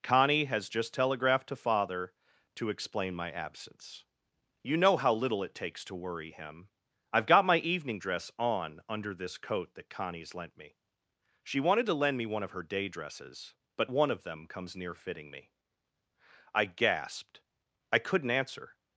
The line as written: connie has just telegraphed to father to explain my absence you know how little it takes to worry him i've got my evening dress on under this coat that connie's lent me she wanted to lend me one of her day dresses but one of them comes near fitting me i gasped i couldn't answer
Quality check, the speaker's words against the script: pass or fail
pass